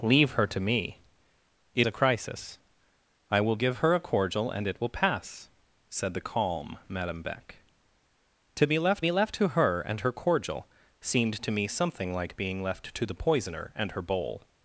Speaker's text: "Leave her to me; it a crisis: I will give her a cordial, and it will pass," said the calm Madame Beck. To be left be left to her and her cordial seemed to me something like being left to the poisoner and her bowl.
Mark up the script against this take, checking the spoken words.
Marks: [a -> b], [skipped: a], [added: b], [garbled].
"Leave her to me; it a crisis: I will give her a cordial, and it will pass," said the calm Madame Beck. To be left be left to her and her cordial seemed to me something like being left to the poisoner and her bowl.